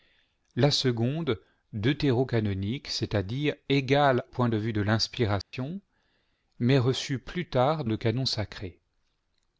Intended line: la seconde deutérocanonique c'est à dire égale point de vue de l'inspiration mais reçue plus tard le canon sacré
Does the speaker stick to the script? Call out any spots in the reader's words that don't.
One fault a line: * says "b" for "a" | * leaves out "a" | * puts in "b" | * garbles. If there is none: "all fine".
all fine